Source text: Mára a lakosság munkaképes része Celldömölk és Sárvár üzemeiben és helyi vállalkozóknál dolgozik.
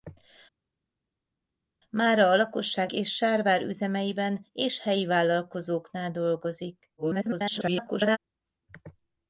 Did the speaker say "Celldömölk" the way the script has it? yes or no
no